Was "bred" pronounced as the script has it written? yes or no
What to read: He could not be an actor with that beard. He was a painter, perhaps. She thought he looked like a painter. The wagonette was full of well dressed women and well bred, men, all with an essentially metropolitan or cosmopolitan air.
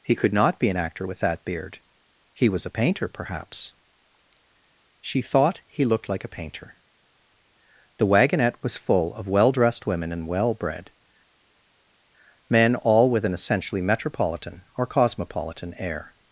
yes